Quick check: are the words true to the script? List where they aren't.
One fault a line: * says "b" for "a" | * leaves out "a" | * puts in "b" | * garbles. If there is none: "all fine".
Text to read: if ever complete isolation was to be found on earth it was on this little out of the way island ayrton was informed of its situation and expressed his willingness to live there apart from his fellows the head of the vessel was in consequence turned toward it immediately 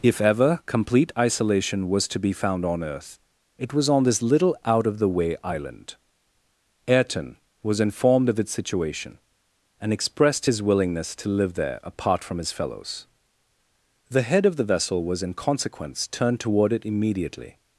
all fine